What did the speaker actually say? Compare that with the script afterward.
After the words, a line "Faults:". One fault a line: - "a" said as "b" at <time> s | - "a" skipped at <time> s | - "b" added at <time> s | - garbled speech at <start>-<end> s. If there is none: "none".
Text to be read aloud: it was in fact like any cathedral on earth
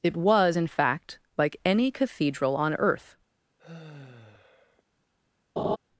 it was in fact like any cathedral on earth
Faults:
none